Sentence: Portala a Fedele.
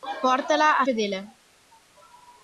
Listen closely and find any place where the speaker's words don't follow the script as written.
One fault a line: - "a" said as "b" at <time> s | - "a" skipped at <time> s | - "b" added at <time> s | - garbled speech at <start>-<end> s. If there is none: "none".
none